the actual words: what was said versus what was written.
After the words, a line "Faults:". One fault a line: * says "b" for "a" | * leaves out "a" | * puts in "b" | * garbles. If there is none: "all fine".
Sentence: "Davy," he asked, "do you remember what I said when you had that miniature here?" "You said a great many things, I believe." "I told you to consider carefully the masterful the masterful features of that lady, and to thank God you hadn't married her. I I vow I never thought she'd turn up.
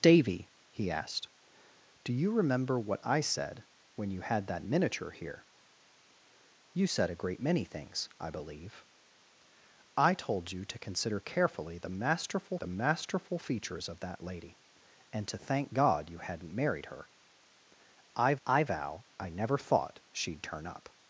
"Davy," he asked, "do you remember what I said when you had that miniature here?" "You said a great many things, I believe." "I told you to consider carefully the masterful the masterful features of that lady, and to thank God you hadn't married her. I I vow I never thought she'd turn up.
Faults:
all fine